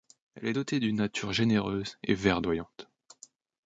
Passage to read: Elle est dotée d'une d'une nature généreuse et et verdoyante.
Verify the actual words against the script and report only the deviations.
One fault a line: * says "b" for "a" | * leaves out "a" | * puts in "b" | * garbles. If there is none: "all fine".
* leaves out "d'une"
* leaves out "et"